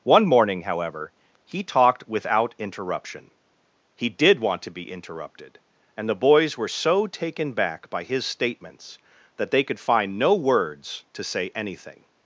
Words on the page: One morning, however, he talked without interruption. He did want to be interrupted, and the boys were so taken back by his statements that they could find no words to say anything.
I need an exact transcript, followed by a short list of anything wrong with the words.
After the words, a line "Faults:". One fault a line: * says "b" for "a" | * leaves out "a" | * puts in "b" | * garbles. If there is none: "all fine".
One morning, however, he talked without interruption. He did want to be interrupted, and the boys were so taken back by his statements that they could find no words to say anything.
Faults:
all fine